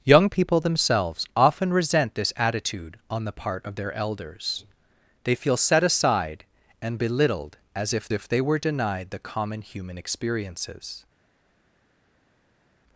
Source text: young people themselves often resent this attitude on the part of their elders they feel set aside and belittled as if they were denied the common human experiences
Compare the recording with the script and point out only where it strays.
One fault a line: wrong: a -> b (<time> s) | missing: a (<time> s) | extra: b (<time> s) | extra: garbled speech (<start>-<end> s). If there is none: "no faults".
extra: if (8.1 s)